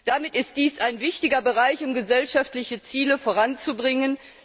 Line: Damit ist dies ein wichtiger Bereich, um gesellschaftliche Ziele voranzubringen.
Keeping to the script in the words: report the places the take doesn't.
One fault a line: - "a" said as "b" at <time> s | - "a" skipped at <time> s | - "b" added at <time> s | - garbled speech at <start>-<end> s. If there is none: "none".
none